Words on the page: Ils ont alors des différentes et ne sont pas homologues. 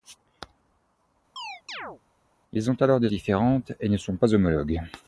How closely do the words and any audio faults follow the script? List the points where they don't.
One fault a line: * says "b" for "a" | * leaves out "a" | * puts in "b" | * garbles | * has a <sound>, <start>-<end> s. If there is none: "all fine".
* has a chirp, 1.4-2.0 s